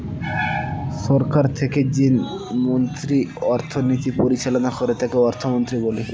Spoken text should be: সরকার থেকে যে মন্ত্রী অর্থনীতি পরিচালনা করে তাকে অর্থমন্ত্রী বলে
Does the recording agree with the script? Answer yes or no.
yes